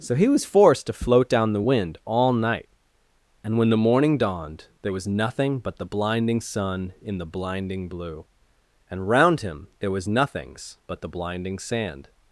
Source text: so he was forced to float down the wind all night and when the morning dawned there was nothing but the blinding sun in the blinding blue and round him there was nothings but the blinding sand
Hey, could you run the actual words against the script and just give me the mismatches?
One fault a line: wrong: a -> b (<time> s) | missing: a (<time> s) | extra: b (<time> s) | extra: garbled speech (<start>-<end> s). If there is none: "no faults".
no faults